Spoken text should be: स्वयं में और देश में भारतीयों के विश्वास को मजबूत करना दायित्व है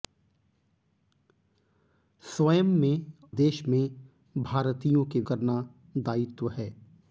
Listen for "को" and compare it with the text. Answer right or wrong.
wrong